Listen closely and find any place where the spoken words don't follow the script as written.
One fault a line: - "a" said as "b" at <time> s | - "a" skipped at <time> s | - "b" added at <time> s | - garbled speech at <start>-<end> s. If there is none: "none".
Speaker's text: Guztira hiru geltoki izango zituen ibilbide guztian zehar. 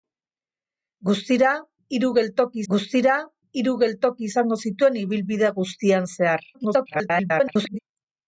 - "guztira hiru geltoki" added at 2.7 s
- garbled speech at 6.5-7.8 s